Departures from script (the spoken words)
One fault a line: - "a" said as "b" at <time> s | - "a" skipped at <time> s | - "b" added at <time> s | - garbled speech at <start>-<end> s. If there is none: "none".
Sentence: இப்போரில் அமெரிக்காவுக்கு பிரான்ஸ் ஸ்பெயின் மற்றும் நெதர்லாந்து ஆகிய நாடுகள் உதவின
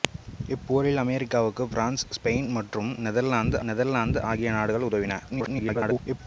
- "நெதர்லாந்து" added at 3.7 s
- garbled speech at 5.3-6.2 s